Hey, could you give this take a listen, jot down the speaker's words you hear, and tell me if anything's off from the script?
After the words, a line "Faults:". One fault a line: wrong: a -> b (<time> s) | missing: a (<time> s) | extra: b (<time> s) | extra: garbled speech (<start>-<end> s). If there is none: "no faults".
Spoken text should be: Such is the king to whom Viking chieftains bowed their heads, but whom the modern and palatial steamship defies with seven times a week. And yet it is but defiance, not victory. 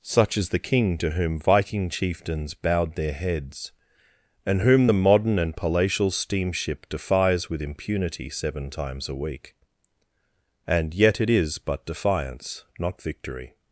Such is the king to whom Viking chieftains bowed their heads, and whom the modern and palatial steamship defies with impunity seven times a week. And yet it is but defiance, not victory.
Faults:
wrong: but -> and (4.5 s)
extra: impunity (7.6 s)